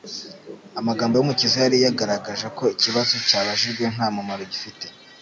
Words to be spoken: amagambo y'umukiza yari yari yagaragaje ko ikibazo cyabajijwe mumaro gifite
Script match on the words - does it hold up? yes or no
no